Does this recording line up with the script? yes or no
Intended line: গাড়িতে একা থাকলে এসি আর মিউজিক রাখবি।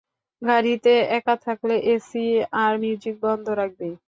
no